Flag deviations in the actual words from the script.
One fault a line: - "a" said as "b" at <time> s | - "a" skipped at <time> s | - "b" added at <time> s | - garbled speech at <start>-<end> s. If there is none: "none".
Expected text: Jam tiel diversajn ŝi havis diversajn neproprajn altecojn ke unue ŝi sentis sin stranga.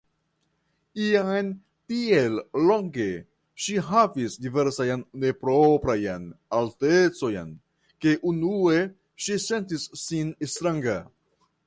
- "diversajn" said as "longe" at 2.7 s